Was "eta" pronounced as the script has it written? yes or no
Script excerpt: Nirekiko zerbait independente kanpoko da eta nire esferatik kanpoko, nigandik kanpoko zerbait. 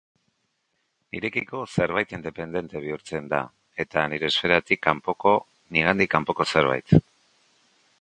yes